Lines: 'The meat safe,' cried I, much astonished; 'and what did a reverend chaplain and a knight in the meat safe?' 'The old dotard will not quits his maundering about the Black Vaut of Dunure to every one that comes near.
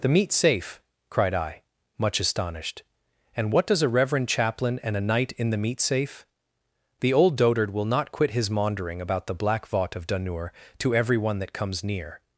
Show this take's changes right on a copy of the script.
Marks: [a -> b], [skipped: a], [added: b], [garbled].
'The meat safe,' cried I, much astonished; 'and what [did -> does] a reverend chaplain and a knight in the meat safe?' 'The old dotard will not [quits -> quit] his maundering about the Black Vaut of Dunure to every one that comes near.